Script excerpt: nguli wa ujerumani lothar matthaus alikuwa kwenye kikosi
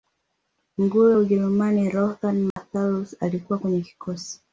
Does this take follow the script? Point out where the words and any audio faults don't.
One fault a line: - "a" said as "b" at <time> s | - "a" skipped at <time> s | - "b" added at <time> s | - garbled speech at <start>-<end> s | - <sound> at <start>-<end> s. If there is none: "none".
- dropout at 2.5-2.6 s